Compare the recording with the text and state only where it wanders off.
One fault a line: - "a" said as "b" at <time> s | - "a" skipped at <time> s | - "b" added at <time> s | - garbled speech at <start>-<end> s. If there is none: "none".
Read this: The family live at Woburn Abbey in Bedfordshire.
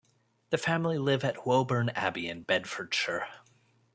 none